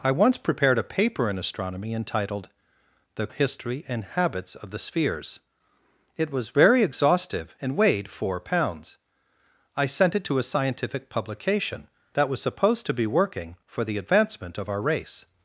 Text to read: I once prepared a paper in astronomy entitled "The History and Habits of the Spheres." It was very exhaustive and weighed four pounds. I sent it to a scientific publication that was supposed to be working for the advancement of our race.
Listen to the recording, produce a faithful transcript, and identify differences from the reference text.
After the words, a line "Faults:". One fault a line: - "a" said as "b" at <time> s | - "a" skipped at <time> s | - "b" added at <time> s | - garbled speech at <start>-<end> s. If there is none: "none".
I once prepared a paper in astronomy entitled "The History and Habits of the Spheres." It was very exhaustive and weighed four pounds. I sent it to a scientific publication that was supposed to be working for the advancement of our race.
Faults:
none